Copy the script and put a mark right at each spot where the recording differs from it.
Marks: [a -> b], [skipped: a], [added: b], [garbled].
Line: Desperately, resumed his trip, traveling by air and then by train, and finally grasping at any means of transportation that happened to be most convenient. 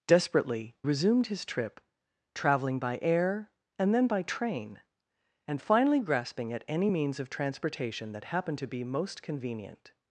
Desperately, resumed his trip, traveling by air and then by train, and finally grasping at any means of transportation that happened to be most convenient.